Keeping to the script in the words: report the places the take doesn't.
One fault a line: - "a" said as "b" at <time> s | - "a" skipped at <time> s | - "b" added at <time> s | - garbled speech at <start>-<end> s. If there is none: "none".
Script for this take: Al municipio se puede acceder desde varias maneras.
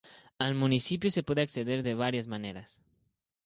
- "desde" said as "de" at 1.8 s